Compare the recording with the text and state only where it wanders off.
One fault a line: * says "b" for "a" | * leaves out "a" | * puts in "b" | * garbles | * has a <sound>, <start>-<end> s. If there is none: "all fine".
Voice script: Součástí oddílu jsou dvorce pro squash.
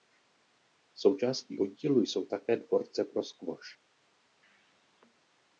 * puts in "také"